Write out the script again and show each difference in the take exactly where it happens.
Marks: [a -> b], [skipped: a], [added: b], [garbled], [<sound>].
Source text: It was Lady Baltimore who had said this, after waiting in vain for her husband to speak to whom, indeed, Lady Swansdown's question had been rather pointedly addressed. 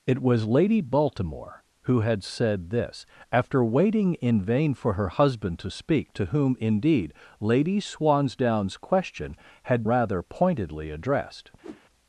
It was Lady Baltimore who had said this, after waiting in vain for her husband to speak to whom, indeed, Lady Swansdown's question had [skipped: been] rather pointedly addressed. [whoosh]